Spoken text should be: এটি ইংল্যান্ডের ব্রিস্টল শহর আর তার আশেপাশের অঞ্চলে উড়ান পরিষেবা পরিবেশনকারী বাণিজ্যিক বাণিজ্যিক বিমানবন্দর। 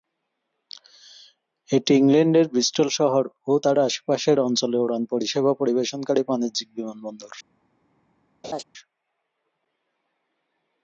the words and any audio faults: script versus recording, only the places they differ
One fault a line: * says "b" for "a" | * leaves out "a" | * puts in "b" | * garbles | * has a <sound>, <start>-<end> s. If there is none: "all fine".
* says "ও" for "আর"
* leaves out "বাণিজ্যিক"
* has a laugh, 8.4-8.6 s